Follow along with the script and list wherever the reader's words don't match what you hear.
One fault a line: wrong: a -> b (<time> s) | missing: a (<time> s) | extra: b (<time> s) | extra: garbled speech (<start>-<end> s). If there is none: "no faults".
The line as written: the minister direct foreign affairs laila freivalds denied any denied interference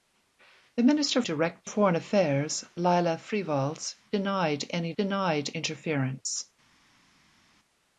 no faults